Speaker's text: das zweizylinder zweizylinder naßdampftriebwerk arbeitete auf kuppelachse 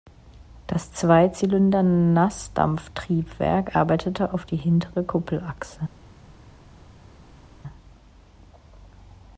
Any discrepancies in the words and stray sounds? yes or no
yes